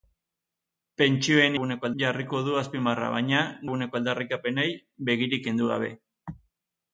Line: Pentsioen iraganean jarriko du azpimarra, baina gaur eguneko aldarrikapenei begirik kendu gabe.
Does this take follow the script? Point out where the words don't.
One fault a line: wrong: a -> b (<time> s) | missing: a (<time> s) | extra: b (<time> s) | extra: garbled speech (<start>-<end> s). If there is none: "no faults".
wrong: iraganean -> eguneko (1.5 s)
missing: gaur (3.4 s)